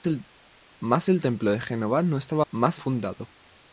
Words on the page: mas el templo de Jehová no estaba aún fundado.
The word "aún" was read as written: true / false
false